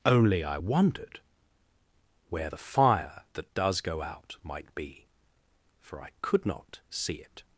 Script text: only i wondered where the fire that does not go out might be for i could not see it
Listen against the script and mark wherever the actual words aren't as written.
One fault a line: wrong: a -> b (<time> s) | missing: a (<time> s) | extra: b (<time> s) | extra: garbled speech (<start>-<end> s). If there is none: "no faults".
missing: not (3.8 s)